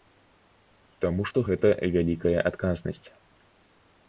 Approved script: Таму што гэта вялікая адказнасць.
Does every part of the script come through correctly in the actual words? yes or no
yes